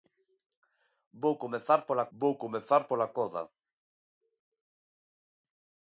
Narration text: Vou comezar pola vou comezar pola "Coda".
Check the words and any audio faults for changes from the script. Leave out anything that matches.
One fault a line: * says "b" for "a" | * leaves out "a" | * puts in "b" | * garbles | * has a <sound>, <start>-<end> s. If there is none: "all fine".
all fine